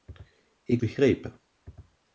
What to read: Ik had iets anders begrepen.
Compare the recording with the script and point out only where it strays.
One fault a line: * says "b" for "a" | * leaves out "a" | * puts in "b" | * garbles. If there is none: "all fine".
* leaves out "had iets anders"